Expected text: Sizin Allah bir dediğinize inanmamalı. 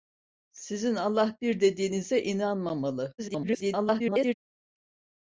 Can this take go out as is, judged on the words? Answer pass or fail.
fail